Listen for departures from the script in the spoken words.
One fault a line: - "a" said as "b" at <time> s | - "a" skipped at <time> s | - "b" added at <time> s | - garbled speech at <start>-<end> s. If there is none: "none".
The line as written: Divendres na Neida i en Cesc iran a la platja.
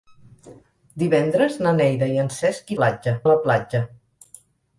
- "iran" said as "platja" at 2.8 s